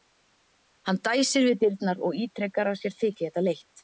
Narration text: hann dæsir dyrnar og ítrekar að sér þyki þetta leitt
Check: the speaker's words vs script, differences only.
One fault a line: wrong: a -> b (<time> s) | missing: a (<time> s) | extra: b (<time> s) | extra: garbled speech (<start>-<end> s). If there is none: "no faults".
extra: við (1.5 s)